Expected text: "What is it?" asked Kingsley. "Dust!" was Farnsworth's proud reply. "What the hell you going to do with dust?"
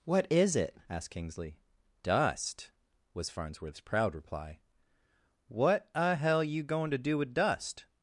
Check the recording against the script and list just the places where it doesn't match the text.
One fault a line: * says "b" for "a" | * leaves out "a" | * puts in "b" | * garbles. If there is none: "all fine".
* says "a" for "the"